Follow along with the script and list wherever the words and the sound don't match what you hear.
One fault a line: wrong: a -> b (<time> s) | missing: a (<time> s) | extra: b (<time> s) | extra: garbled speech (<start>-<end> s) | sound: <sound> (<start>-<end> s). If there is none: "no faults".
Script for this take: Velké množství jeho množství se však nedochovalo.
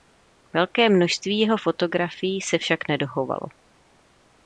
wrong: množství -> fotografií (1.6 s)